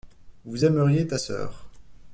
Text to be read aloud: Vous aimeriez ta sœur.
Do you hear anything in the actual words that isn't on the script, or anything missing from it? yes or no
no